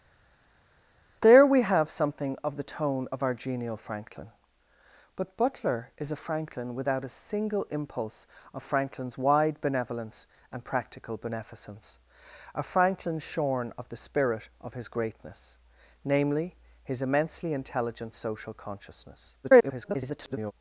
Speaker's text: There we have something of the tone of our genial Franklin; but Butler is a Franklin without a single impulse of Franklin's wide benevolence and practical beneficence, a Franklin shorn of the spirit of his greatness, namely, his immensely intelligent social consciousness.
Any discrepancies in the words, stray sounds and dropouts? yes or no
yes